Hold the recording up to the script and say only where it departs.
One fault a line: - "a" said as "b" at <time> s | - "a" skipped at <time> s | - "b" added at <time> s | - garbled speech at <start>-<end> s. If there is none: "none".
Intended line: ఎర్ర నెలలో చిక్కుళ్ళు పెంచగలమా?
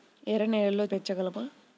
- "చిక్కుళ్ళు" skipped at 0.8 s